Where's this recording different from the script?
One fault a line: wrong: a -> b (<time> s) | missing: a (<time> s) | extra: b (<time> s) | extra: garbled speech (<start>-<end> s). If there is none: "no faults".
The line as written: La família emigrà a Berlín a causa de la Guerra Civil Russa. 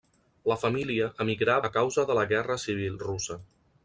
missing: Berlín (1.6 s)